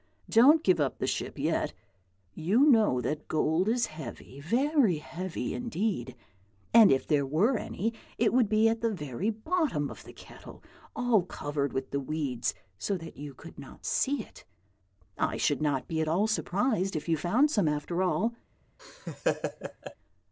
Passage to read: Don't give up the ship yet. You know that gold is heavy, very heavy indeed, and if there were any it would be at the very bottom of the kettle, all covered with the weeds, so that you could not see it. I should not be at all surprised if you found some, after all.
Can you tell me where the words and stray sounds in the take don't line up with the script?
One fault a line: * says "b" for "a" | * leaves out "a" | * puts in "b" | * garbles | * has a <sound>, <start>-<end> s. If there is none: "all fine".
* has a laugh, 18.8-20.0 s